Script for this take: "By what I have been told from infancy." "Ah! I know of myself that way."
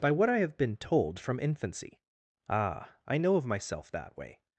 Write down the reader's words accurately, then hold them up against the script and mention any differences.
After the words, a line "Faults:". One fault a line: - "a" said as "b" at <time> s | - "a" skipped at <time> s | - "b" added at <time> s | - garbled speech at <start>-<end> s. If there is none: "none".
"By what I have been told from infancy." "Ah! I know of myself that way."
Faults:
none